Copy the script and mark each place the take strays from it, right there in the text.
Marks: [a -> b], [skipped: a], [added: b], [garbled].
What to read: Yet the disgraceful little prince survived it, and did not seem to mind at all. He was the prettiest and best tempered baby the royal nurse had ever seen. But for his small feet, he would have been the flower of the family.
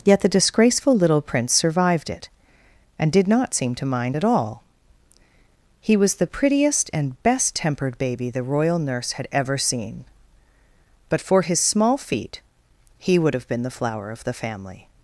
Yet the disgraceful little prince survived it, and did not seem to mind at all. He was the prettiest and best tempered baby the royal nurse had ever seen. But for his small feet, he would have been the flower of the family.